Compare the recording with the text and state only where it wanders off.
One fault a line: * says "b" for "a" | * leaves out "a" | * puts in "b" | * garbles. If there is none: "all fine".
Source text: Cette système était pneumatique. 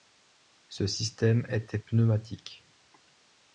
* says "Ce" for "Cette"